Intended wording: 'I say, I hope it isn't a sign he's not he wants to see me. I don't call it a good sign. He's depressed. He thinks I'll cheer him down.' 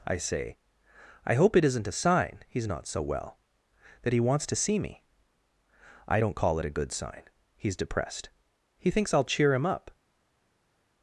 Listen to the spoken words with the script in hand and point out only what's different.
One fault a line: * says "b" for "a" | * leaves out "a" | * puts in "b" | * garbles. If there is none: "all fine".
* puts in "so well that"
* says "up" for "down"